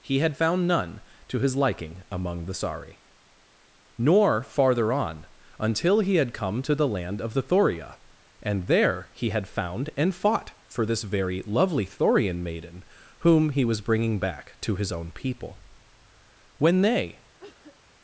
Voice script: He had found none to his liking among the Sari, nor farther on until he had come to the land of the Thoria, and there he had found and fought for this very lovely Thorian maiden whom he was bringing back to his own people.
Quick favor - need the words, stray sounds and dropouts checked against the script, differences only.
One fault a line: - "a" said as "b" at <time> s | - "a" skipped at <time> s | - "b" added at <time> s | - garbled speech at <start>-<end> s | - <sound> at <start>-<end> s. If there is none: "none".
- "When they" added at 16.6 s
- cough at 17.4-17.8 s